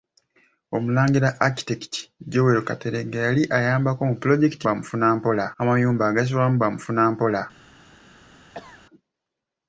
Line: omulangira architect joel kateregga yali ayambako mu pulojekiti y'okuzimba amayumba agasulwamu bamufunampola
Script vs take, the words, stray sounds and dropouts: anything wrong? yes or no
yes